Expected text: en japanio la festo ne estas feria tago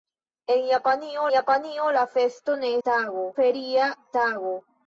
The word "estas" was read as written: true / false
false